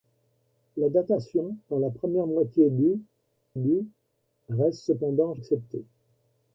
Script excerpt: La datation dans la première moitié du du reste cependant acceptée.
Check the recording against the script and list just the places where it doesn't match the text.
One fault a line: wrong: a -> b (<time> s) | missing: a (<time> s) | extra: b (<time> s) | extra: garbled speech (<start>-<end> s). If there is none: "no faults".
no faults